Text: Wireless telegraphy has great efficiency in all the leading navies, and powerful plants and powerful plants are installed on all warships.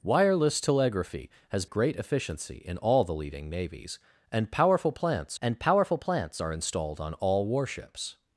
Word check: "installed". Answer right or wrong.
right